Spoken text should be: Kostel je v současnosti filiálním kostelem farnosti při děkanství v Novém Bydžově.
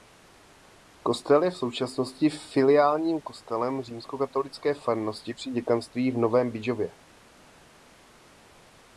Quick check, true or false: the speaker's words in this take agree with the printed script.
false